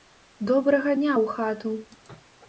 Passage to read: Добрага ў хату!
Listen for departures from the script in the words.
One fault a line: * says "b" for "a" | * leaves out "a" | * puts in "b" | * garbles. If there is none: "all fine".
* puts in "дня"